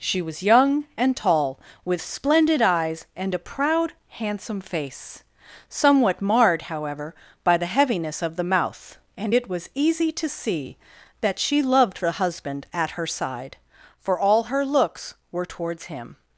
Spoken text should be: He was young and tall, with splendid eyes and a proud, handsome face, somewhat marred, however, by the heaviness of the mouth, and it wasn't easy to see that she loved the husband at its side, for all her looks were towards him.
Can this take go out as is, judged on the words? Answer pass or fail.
fail